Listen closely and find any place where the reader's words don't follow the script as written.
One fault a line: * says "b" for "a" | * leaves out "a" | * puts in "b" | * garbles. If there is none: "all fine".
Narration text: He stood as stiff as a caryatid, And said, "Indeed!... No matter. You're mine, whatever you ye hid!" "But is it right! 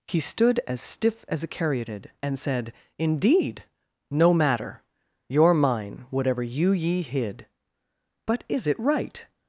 all fine